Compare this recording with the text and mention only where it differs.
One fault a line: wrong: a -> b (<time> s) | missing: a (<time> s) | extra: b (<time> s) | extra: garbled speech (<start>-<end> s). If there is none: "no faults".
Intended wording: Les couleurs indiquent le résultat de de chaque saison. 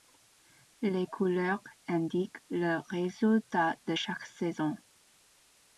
missing: de (4.0 s)